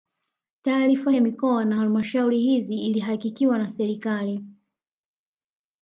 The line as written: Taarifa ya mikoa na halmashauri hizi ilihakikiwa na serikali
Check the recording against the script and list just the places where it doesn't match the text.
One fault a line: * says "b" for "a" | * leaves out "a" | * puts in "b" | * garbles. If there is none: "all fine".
all fine